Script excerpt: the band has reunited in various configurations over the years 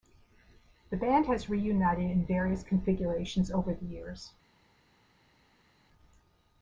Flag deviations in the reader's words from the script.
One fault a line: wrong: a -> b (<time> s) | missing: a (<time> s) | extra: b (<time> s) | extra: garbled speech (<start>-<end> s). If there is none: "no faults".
no faults